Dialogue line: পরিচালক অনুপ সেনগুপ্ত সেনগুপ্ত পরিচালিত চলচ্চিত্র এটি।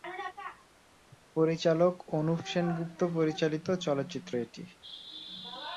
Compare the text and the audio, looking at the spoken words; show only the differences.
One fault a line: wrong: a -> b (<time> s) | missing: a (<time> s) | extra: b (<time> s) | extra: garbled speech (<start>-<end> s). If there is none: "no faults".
missing: সেনগুপ্ত (3.0 s)